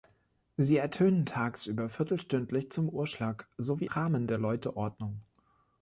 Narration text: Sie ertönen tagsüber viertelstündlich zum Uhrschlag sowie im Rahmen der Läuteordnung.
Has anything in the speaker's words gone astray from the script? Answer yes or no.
yes